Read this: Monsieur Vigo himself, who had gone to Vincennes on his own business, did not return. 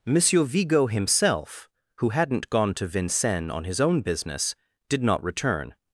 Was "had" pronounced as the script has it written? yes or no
no